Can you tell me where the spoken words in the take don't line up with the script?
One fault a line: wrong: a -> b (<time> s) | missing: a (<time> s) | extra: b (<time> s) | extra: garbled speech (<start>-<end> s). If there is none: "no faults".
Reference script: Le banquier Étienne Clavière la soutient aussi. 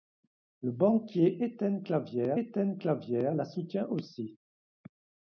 extra: Étienne Clavière (2.4 s)